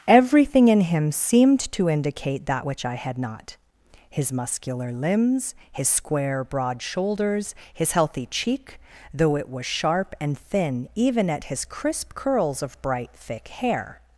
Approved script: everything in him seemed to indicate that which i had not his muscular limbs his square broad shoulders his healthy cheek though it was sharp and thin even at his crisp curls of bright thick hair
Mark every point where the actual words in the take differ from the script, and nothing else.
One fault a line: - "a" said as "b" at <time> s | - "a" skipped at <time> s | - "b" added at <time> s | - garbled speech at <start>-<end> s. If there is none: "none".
none